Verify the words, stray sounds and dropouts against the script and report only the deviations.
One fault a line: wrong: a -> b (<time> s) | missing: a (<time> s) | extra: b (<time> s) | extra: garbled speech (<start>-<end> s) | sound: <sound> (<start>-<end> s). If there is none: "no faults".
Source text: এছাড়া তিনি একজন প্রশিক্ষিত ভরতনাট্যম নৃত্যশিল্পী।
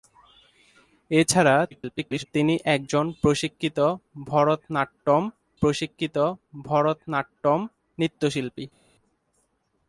extra: garbled speech (1.7-2.3 s)
extra: প্রশিক্ষিত ভরতনাট্যম (5.6 s)